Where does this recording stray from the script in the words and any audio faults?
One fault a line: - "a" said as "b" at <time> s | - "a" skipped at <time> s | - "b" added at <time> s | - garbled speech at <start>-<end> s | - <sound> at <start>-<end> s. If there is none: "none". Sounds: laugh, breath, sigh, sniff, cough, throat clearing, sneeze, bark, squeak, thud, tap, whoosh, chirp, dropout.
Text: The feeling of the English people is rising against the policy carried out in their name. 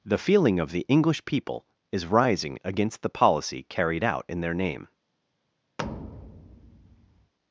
- thud at 5.8-7.3 s